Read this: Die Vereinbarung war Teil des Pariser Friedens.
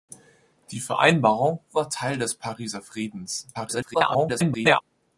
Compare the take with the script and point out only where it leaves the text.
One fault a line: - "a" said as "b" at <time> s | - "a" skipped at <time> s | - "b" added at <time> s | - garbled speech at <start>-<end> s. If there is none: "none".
- garbled speech at 3.5-4.8 s